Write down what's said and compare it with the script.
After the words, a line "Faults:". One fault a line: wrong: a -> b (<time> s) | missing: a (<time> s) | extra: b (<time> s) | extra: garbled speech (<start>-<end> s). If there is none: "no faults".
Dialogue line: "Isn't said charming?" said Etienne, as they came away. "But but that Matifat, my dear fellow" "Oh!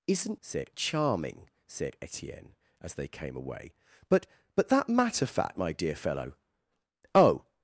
"Isn't said charming?" said Etienne, as they came away. "But but that Matifat, my dear fellow" "Oh!
Faults:
no faults